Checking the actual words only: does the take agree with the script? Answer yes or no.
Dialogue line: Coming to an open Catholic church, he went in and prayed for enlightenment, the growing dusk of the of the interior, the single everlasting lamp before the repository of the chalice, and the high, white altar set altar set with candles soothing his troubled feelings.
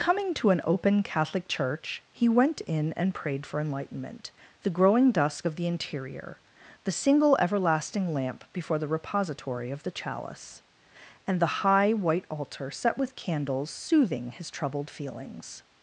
no